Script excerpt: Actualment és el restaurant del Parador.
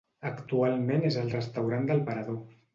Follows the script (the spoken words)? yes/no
yes